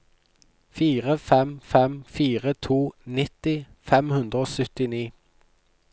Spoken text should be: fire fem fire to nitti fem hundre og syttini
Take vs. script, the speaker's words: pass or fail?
fail